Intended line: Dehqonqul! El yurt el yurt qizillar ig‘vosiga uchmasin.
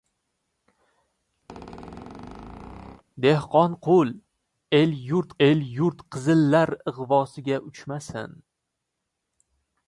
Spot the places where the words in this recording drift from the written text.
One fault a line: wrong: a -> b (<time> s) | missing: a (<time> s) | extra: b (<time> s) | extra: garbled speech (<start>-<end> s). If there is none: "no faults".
no faults